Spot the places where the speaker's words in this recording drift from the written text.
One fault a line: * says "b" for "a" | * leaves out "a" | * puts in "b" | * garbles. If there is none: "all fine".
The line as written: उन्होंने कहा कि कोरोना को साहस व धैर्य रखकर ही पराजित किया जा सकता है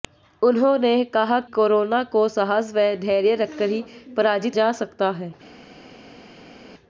* leaves out "कि"
* leaves out "किया"